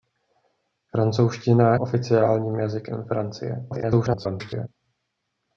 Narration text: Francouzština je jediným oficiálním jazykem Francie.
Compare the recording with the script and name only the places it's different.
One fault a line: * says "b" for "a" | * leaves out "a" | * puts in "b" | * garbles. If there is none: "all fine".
* leaves out "je jediným"
* garbles